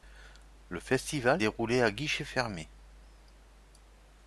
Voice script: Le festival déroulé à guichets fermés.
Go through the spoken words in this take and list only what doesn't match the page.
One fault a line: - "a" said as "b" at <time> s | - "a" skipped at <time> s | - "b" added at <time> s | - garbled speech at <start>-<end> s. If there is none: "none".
none